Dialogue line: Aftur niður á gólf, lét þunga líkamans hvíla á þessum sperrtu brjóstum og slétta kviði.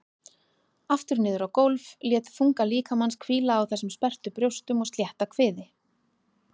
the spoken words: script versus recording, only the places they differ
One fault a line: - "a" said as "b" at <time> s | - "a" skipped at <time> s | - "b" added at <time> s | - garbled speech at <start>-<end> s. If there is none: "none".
none